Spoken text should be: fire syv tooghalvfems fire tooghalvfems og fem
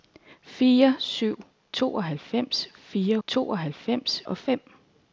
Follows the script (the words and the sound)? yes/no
yes